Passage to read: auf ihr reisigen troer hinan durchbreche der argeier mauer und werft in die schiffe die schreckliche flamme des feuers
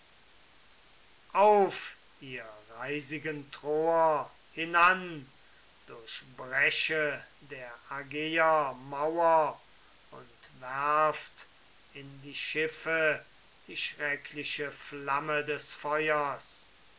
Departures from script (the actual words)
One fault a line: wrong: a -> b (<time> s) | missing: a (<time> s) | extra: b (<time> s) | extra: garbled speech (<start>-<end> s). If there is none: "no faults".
no faults